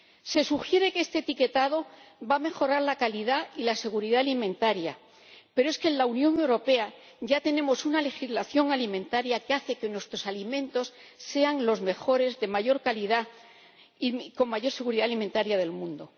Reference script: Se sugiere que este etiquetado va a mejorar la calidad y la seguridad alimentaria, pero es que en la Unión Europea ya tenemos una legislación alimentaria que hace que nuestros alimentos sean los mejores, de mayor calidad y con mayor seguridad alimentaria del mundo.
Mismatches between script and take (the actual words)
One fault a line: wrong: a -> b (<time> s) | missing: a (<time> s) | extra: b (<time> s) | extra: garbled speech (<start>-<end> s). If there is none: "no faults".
no faults